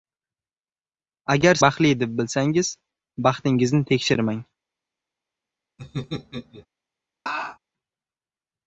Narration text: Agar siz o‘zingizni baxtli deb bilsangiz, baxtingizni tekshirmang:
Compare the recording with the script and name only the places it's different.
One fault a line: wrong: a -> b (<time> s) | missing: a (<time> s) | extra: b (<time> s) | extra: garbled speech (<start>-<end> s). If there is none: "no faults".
missing: siz o‘zingizni (1.6 s)